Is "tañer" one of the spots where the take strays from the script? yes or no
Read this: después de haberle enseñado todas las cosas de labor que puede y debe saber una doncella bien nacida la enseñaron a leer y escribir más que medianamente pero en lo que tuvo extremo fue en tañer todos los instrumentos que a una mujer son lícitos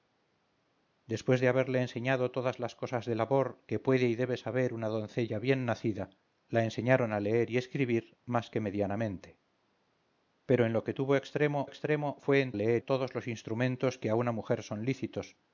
yes